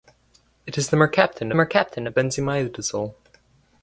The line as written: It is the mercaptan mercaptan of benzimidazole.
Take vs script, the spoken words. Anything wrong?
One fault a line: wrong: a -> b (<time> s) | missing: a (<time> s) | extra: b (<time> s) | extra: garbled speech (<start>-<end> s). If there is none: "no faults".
no faults